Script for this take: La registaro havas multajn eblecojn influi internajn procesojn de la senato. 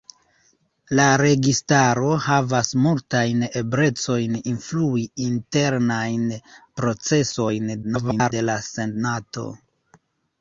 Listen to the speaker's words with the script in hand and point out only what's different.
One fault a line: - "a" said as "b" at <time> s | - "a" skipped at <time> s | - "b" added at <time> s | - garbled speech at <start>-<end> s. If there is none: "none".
- garbled speech at 7.8-8.3 s